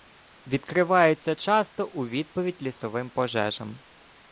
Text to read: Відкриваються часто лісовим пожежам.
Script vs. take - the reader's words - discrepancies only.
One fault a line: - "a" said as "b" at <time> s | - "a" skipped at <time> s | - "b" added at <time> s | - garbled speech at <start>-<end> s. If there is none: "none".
- "у відповідь" added at 1.9 s